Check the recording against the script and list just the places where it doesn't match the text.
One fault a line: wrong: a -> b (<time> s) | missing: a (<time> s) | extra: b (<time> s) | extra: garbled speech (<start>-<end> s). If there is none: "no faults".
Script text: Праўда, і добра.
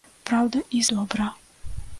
no faults